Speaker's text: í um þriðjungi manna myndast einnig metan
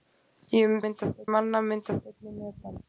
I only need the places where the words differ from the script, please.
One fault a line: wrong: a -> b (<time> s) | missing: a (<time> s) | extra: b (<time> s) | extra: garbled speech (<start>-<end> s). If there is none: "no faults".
wrong: þriðjungi -> myndast (0.8 s)